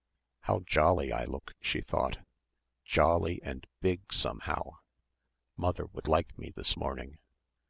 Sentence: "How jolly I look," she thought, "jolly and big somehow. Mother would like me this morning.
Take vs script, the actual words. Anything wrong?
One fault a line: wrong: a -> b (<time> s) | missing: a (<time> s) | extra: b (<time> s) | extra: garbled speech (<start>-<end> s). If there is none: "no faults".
no faults